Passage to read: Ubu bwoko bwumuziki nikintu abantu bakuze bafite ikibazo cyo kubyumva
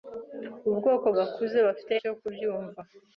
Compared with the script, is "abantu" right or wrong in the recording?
wrong